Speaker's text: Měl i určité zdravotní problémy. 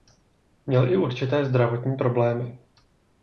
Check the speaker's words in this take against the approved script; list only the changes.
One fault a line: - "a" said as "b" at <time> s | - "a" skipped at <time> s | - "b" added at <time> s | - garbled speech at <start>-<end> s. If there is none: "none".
none